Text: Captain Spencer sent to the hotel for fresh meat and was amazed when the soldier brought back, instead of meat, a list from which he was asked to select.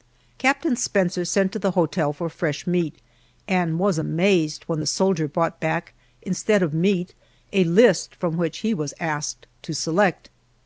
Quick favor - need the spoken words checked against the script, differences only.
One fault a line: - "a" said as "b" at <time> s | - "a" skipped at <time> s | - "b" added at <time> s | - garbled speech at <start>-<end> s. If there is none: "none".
none